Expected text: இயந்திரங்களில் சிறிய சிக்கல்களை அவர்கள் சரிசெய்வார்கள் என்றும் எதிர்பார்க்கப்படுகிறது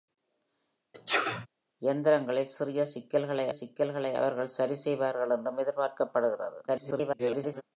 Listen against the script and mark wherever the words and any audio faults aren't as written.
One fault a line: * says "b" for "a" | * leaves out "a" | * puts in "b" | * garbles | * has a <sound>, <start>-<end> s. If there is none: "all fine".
* has a sneeze, 0.9-1.5 s
* puts in "சிக்கல்களை"
* garbles